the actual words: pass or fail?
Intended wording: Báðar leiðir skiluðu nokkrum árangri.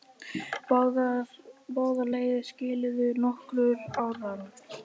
pass